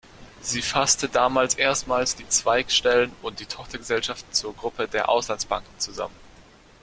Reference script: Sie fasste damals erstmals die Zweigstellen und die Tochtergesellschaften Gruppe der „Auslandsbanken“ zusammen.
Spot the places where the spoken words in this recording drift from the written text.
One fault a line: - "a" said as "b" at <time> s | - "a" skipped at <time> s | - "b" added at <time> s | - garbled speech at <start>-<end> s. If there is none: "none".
- "zur" added at 4.3 s